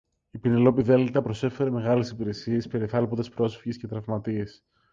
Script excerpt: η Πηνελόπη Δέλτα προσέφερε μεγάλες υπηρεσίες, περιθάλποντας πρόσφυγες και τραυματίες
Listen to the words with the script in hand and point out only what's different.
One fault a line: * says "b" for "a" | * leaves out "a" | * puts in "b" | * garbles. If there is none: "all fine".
all fine